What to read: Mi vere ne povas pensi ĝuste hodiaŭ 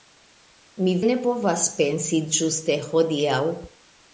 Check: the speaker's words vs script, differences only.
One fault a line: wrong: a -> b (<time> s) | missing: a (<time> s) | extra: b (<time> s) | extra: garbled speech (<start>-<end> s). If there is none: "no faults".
missing: vere (0.9 s)